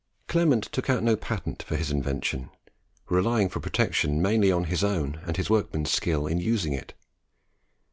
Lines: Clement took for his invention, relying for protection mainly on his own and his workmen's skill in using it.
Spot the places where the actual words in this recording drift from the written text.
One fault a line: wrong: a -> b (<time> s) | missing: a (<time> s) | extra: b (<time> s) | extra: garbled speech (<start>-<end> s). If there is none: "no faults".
extra: out no patent (0.9 s)